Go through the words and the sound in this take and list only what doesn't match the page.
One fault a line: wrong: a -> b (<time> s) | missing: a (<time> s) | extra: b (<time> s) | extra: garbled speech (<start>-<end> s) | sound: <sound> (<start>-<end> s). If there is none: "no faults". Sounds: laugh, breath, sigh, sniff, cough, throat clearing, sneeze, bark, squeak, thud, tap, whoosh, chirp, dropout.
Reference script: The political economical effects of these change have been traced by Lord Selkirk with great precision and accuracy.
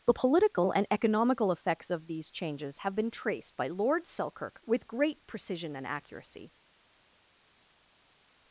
extra: and (0.7 s)
wrong: change -> changes (2.3 s)